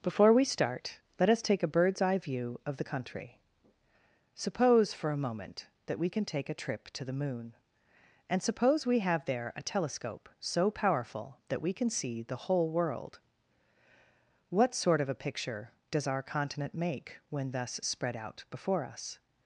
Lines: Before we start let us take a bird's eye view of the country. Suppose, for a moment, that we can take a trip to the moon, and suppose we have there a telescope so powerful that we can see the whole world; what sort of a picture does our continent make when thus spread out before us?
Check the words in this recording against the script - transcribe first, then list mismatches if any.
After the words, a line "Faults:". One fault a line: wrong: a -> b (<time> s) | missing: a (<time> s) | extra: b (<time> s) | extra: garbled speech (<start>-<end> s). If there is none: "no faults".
Before we start let us take a bird's eye view of the country. Suppose, for a moment, that we can take a trip to the moon, and suppose we have there a telescope so powerful that we can see the whole world; what sort of a picture does our continent make when thus spread out before us?
Faults:
no faults